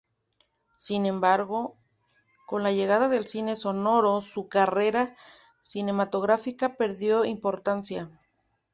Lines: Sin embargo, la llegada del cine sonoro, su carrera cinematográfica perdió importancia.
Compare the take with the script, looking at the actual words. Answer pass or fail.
fail